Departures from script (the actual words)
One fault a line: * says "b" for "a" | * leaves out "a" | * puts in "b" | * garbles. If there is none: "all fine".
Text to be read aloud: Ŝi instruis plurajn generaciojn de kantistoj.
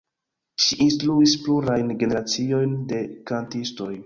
all fine